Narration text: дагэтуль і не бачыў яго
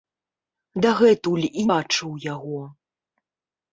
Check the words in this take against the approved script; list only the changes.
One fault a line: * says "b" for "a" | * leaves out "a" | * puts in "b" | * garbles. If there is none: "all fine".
* leaves out "не"